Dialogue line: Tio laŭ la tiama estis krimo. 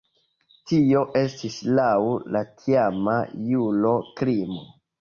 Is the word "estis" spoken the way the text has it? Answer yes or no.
no